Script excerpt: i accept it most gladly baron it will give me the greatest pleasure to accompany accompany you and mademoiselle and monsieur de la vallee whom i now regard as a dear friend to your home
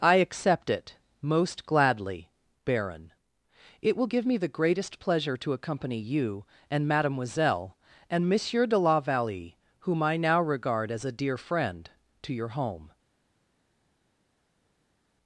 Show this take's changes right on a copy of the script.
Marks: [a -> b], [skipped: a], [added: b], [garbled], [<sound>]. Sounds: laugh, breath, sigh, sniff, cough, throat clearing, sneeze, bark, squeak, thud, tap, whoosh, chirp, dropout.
i accept it most gladly baron it will give me the greatest pleasure to accompany [skipped: accompany] you and mademoiselle and monsieur de la vallee whom i now regard as a dear friend to your home